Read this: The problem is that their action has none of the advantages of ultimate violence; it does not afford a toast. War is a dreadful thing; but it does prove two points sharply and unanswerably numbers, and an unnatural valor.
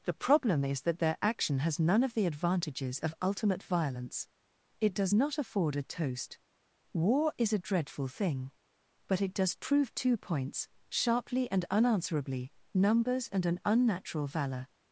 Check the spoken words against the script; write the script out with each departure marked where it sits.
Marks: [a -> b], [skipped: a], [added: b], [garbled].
The problem is that their action has none of the advantages of ultimate violence; it does not afford a toast. War is a dreadful thing; but it does prove two points sharply and unanswerably numbers, and an unnatural valor.